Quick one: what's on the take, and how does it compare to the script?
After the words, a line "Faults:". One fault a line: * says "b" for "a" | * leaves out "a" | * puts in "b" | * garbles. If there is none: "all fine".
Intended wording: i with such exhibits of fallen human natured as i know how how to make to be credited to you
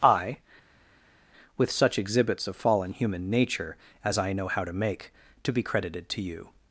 i with such exhibits of fallen human nature as i know how to make to be credited to you
Faults:
* says "nature" for "natured"
* leaves out "how"